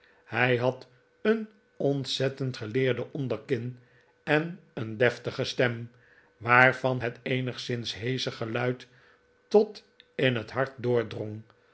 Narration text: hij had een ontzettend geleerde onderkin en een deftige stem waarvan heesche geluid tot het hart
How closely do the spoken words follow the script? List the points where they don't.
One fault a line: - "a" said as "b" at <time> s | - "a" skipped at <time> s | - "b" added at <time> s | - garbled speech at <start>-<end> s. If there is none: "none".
- "het eenigszins" added at 7.0 s
- "in" added at 10.1 s